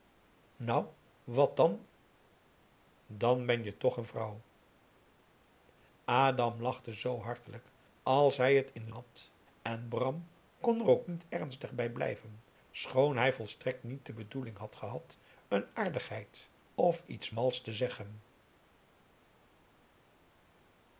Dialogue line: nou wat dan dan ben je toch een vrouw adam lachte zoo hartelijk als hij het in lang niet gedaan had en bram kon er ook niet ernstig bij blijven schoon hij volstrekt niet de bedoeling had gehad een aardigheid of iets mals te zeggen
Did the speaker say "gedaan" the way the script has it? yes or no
no